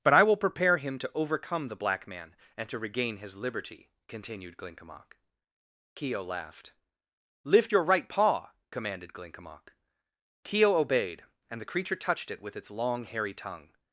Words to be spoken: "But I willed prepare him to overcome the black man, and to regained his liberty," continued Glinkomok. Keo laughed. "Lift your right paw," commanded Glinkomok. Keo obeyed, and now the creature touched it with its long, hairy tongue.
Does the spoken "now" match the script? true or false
false